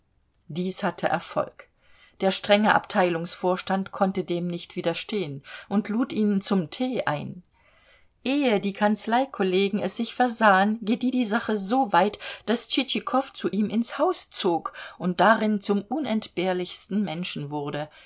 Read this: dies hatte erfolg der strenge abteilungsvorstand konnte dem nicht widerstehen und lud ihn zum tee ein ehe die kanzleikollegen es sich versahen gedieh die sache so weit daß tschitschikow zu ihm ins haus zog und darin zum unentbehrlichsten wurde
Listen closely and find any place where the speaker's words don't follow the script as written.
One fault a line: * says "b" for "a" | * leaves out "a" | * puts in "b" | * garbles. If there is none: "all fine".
* puts in "menschen"